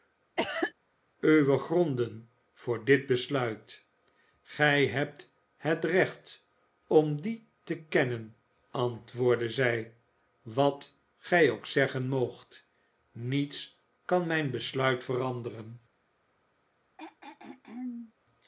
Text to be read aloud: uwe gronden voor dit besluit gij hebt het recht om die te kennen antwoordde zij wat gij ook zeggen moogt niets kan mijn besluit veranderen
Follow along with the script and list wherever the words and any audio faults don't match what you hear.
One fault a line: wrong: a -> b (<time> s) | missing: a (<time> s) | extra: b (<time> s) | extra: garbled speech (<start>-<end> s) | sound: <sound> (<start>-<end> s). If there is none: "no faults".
sound: cough (0.4-0.7 s)
sound: throat clearing (17.0-18.1 s)